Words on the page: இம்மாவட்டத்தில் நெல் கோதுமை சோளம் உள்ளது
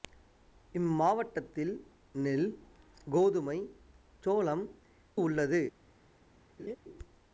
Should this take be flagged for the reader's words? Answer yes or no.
no